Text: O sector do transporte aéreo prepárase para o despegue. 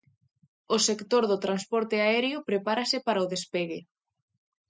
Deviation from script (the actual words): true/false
false